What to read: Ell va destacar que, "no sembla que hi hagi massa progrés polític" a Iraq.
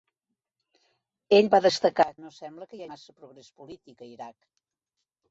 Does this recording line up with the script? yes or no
no